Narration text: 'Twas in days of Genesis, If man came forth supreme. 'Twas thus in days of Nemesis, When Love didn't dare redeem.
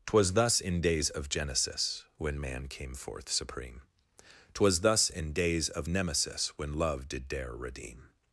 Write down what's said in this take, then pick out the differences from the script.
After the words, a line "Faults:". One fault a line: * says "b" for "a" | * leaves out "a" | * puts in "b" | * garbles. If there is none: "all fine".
'Twas thus in days of Genesis, When man came forth supreme. 'Twas thus in days of Nemesis, When Love did dare redeem.
Faults:
* puts in "thus"
* says "When" for "If"
* says "did" for "didn't"